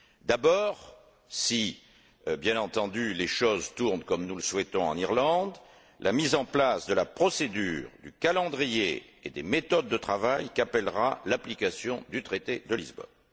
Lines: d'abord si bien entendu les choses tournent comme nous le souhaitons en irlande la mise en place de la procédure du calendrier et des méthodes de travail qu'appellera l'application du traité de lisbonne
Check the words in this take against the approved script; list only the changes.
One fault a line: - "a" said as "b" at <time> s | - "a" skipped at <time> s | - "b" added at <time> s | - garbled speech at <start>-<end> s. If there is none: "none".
none